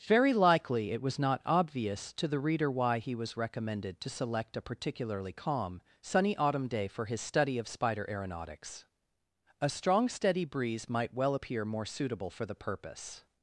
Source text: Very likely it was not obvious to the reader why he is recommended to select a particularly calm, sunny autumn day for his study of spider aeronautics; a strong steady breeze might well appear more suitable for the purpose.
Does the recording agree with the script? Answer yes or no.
no